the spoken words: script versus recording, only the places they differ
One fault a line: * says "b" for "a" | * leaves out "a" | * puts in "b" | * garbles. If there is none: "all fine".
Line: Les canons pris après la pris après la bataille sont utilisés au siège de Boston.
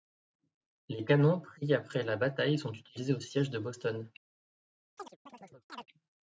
* leaves out "pris après la"